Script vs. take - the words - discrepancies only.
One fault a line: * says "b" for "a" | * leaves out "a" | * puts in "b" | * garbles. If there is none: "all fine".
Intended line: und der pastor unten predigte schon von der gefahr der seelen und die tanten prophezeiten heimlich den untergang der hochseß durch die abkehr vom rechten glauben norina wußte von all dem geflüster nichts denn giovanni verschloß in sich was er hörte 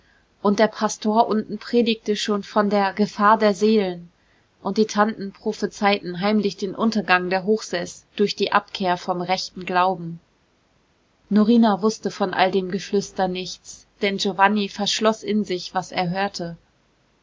all fine